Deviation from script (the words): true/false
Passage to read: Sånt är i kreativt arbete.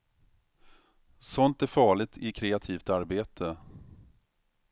true